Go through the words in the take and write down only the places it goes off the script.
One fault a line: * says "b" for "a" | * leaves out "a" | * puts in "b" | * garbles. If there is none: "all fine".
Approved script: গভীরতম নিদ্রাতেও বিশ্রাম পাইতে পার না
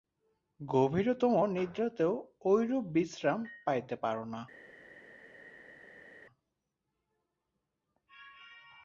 * puts in "ঐরূপ"